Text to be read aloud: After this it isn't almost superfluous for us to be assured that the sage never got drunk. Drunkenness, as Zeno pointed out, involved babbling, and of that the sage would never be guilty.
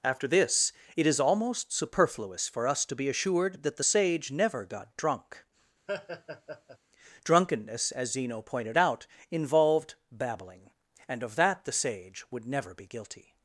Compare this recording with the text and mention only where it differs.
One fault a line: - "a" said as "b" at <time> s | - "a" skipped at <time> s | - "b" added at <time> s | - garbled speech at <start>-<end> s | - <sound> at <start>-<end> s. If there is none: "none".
- "isn't" said as "is" at 1.1 s
- laugh at 5.9-6.8 s